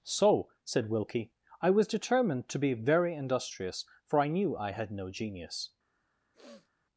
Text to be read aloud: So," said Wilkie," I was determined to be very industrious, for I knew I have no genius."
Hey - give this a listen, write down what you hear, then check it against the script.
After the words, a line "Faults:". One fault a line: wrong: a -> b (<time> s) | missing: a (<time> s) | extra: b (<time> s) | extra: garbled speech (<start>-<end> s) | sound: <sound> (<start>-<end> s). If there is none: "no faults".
So," said Wilkie," I was determined to be very industrious, for I knew I had no genius."
Faults:
wrong: have -> had (4.7 s)
sound: sniff (6.3-6.7 s)